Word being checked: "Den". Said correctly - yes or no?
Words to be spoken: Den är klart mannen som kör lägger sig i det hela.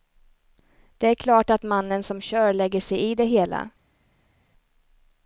no